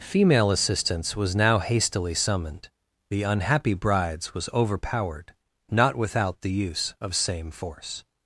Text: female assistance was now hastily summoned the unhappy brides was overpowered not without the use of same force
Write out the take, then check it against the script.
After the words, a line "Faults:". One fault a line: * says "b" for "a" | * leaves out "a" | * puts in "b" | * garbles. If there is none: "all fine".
female assistance was now hastily summoned the unhappy brides was overpowered not without the use of same force
Faults:
all fine